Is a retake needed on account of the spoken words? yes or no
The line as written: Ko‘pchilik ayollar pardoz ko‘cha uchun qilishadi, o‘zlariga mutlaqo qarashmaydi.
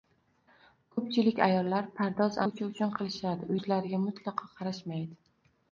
no